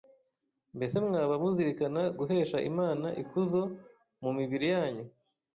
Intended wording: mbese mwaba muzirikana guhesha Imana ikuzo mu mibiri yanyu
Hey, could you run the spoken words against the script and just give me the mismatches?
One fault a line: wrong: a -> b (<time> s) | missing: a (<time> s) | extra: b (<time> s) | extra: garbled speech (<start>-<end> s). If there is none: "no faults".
no faults